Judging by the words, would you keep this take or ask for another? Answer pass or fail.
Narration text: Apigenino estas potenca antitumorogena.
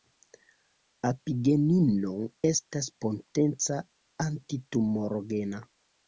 pass